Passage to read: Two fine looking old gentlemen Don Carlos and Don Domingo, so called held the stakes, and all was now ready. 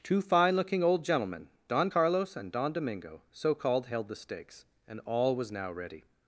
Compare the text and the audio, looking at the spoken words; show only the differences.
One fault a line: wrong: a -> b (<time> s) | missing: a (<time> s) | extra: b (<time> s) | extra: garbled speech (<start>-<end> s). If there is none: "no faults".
no faults